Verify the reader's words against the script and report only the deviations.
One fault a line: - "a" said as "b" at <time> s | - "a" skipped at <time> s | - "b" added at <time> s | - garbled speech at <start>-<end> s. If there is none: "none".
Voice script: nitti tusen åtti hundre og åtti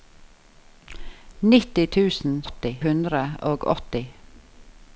none